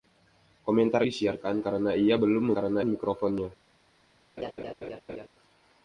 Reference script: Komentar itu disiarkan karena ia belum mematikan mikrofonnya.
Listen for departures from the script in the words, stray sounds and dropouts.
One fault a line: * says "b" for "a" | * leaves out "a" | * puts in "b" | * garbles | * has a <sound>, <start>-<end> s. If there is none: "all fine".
* leaves out "itu"
* says "karena" for "mematikan"
* has a laugh, 4.4-5.3 s